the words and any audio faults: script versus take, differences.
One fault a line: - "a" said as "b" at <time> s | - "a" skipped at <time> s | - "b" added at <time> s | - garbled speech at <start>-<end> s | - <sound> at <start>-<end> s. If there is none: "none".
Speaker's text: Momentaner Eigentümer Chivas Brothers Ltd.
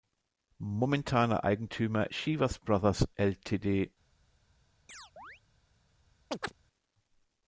- chirp at 4.9-5.4 s
- chirp at 6.3-6.5 s